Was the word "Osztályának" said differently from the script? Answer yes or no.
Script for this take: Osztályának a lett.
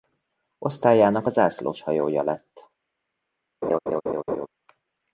no